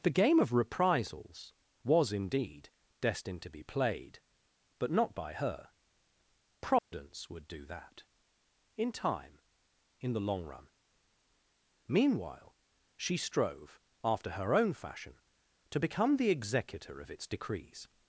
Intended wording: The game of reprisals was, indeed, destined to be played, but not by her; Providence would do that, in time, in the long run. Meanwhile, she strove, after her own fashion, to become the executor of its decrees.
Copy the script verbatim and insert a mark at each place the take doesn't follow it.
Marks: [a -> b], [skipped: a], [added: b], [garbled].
The game of reprisals was, indeed, destined to be played, but not by her; Providence would do that, in time, in the long run. Meanwhile, she strove, after her own fashion, to become the executor of its decrees.